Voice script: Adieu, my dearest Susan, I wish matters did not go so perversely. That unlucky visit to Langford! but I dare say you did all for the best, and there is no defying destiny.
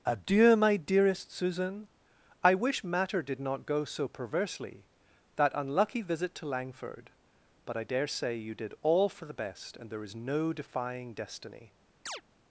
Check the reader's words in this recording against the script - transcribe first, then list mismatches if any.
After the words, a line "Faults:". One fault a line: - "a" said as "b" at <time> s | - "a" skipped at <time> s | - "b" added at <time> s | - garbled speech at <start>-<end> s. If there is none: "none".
Adieu, my dearest Susan, I wish matter did not go so perversely. That unlucky visit to Langford! but I dare say you did all for the best, and there is no defying destiny.
Faults:
- "matters" said as "matter" at 2.8 s